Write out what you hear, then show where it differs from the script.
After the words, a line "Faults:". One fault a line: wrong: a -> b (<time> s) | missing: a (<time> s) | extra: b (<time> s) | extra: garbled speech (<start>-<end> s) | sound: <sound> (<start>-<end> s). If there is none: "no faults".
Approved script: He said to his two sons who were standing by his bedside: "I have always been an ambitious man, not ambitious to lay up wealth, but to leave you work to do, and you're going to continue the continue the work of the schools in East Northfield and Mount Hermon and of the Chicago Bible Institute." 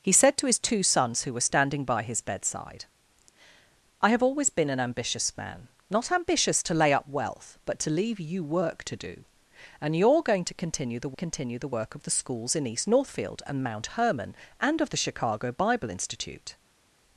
He said to his two sons who were standing by his bedside: "I have always been an ambitious man, not ambitious to lay up wealth, but to leave you work to do, and you're going to continue the continue the work of the schools in East Northfield and Mount Hermon and of the Chicago Bible Institute."
Faults:
no faults